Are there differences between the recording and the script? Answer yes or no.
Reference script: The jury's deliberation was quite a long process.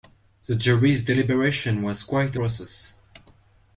yes